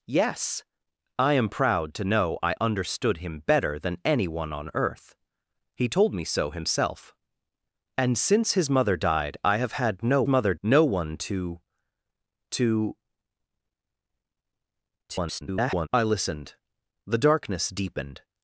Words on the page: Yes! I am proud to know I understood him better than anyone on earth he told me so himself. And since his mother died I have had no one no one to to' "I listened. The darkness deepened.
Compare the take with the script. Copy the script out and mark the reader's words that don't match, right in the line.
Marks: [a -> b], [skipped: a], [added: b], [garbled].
Yes! I am proud to know I understood him better than anyone on earth he told me so himself. And since his mother died I have had no [one -> mother] no one to to' [garbled] "I listened. The darkness deepened.